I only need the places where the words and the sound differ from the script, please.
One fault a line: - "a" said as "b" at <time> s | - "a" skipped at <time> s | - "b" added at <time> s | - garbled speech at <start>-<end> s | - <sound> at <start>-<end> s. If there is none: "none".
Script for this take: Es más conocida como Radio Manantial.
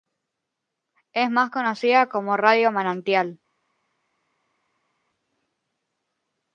none